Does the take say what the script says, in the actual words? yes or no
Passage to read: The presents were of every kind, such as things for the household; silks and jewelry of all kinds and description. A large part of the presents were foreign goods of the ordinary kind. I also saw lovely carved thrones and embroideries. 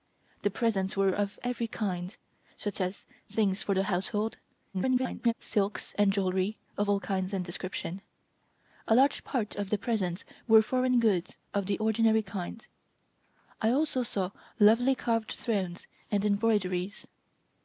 no